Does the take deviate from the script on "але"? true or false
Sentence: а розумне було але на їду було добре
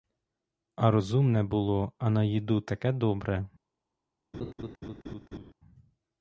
true